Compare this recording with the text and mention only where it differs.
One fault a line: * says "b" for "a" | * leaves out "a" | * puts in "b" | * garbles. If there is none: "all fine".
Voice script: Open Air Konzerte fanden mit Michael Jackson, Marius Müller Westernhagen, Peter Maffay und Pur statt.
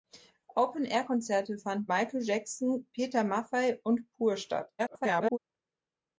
* leaves out "mit"
* leaves out "Marius Müller Westernhagen"
* garbles